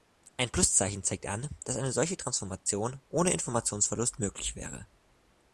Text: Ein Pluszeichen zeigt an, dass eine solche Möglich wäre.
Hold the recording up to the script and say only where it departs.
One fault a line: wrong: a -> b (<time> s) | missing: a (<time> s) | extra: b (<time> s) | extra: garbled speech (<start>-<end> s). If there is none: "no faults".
extra: Transformation ohne Informationsverlust (2.2 s)